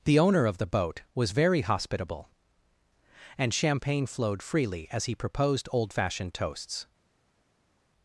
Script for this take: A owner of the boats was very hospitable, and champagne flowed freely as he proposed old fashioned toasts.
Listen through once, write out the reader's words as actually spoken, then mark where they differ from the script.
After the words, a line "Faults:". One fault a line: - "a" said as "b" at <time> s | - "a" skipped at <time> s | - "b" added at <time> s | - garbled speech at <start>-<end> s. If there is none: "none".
The owner of the boat was very hospitable, and champagne flowed freely as he proposed old fashioned toasts.
Faults:
- "A" said as "The" at 0.0 s
- "boats" said as "boat" at 0.7 s